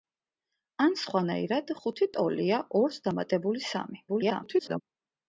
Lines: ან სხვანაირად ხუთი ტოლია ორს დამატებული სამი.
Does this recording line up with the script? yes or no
no